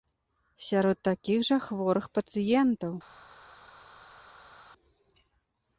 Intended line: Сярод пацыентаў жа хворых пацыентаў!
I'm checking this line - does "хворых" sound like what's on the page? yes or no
yes